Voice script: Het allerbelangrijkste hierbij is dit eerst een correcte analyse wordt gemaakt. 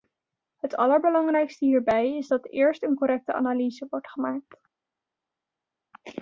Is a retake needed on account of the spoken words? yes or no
yes